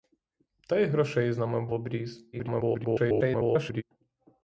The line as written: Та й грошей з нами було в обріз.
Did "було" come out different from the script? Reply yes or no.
yes